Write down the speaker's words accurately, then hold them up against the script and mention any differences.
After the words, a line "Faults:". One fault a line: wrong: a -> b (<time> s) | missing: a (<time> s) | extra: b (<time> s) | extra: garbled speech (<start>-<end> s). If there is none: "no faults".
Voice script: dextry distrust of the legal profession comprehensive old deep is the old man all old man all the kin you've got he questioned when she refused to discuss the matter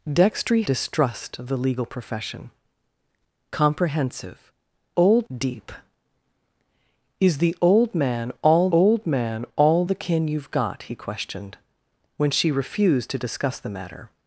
dextry distrust of the legal profession comprehensive old deep is the old man all old man all the kin you've got he questioned when she refused to discuss the matter
Faults:
no faults